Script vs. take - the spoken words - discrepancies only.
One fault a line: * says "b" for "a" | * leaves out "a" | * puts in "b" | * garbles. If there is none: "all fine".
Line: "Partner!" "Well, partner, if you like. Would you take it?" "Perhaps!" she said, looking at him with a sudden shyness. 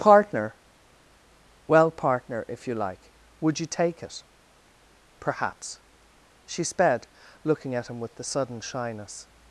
* says "sped" for "said"
* says "the" for "a"